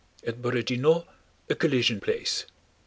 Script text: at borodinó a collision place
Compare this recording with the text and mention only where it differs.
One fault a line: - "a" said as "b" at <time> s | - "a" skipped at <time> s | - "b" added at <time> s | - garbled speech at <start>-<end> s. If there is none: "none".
none